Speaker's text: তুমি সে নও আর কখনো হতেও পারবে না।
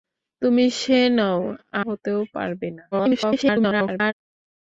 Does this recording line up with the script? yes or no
no